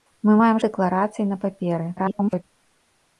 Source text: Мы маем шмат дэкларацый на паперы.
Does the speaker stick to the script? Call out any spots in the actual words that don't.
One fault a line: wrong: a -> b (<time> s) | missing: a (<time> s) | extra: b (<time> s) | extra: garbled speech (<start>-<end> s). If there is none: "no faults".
missing: шмат (0.6 s)
extra: garbled speech (2.0-2.4 s)